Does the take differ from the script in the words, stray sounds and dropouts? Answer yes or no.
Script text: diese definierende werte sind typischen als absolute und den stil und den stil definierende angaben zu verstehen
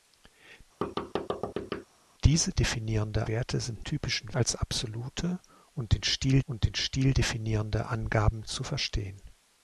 yes